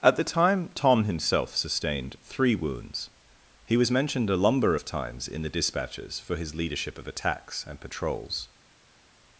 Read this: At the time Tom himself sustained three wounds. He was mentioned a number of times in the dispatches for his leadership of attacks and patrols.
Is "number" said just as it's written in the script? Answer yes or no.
no